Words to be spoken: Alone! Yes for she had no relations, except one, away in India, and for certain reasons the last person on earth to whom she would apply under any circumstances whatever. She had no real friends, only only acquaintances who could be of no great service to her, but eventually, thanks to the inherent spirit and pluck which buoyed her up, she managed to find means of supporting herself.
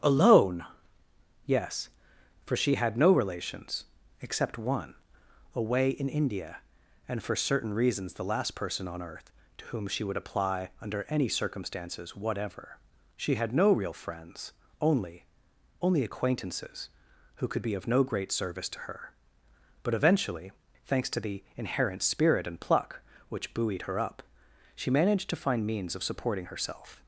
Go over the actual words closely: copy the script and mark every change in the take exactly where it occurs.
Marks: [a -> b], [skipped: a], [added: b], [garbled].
Alone! Yes for she had no relations, except one, away in India, and for certain reasons the last person on earth to whom she would apply under any circumstances whatever. She had no real friends, only only acquaintances who could be of no great service to her, but eventually, thanks to the inherent spirit and pluck which buoyed her up, she managed to find means of supporting herself.